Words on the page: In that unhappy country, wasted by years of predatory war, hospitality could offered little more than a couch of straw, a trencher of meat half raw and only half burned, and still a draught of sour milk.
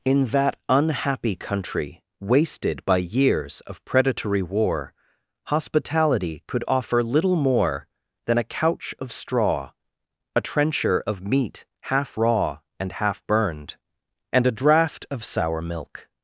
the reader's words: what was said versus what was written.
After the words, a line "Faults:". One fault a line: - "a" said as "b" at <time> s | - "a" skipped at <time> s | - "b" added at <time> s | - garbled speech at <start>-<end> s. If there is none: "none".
In that unhappy country, wasted by years of predatory war, hospitality could offer little more than a couch of straw, a trencher of meat half raw and half burned, and a draught of sour milk.
Faults:
- "offered" said as "offer" at 6.7 s
- "only" skipped at 12.9 s
- "still" skipped at 14.4 s